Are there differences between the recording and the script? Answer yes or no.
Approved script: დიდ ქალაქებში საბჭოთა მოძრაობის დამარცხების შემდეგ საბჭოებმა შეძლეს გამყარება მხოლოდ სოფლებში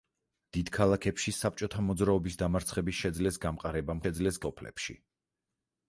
yes